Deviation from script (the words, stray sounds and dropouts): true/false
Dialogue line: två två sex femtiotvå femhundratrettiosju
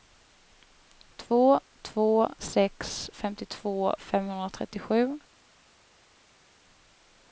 false